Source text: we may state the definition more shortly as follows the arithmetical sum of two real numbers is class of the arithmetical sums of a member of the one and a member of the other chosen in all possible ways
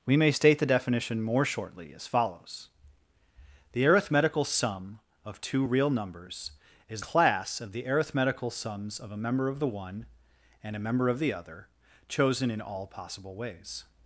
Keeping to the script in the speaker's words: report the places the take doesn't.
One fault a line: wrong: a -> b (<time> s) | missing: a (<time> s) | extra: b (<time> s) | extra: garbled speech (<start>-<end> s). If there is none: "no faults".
no faults